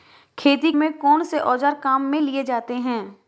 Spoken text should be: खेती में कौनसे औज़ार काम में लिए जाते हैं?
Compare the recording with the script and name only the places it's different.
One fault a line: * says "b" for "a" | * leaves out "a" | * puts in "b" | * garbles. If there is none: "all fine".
all fine